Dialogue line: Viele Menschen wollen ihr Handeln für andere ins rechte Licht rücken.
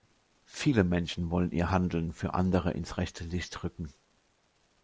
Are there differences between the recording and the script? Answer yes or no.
no